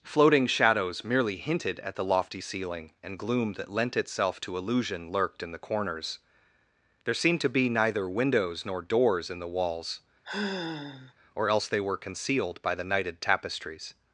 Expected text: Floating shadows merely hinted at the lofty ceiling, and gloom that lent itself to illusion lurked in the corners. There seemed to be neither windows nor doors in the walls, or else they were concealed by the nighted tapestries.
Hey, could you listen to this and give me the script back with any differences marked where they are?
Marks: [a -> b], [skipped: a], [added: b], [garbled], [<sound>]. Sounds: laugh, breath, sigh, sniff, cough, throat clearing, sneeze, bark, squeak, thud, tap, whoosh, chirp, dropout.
Floating shadows merely hinted at the lofty ceiling, and gloom that lent itself to illusion lurked in the corners. There seemed to be neither windows nor doors in the walls, [sigh] or else they were concealed by the nighted tapestries.